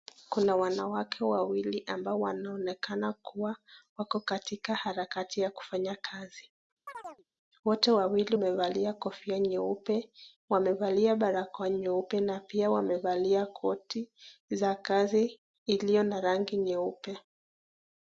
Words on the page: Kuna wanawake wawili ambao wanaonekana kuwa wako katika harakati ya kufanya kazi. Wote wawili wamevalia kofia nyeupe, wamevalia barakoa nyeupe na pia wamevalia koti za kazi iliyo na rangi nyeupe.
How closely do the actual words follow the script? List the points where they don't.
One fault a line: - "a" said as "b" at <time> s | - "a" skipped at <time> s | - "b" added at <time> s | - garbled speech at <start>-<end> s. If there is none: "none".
none